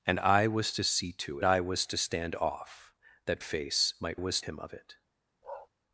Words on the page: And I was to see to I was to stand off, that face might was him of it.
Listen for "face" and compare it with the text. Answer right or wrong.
right